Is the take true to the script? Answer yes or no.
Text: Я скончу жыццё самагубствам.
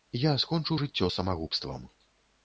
yes